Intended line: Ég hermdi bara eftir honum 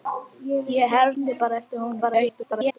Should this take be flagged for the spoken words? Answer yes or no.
yes